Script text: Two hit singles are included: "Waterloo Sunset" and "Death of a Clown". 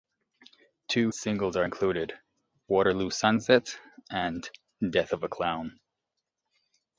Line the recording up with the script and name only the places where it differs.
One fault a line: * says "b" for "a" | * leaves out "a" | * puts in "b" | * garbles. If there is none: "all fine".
* leaves out "hit"